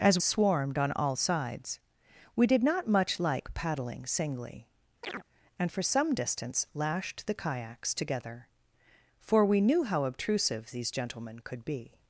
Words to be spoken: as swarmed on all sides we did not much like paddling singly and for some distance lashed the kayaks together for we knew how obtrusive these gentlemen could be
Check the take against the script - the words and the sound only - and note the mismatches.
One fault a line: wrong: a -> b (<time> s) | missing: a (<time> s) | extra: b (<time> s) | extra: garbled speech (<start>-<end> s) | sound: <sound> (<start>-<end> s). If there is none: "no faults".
sound: chirp (5.0-5.2 s)